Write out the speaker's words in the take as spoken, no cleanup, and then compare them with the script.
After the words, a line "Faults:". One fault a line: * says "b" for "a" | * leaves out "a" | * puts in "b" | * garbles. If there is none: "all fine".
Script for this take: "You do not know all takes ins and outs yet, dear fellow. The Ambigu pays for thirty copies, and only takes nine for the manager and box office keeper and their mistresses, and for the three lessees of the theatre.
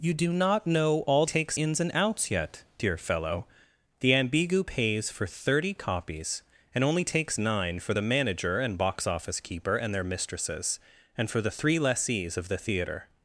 "You do not know all takes ins and outs yet, dear fellow. The Ambigu pays for thirty copies, and only takes nine for the manager and box office keeper and their mistresses, and for the three lessees of the theatre.
Faults:
all fine